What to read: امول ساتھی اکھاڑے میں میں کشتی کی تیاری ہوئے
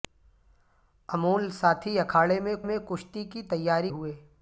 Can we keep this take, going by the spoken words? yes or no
yes